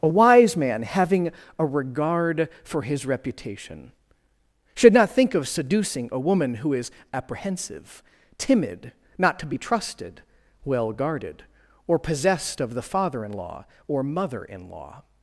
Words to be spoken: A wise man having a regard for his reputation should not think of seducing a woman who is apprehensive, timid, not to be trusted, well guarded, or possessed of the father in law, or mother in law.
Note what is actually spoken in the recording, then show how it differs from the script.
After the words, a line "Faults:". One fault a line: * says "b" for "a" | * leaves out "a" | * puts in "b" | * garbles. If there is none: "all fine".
A wise man having a regard for his reputation should not think of seducing a woman who is apprehensive, timid, not to be trusted, well guarded, or possessed of the father in law, or mother in law.
Faults:
all fine